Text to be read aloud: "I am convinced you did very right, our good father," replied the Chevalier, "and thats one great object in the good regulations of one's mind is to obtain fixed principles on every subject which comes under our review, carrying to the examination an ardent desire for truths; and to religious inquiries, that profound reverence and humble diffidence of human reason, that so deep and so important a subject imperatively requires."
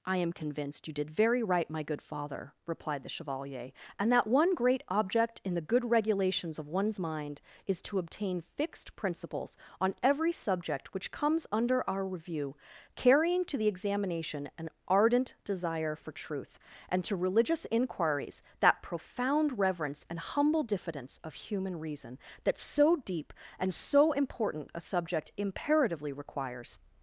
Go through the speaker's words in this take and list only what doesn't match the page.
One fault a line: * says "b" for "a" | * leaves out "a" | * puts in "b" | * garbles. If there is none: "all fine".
* says "my" for "our"
* says "that" for "thats"
* says "truth" for "truths"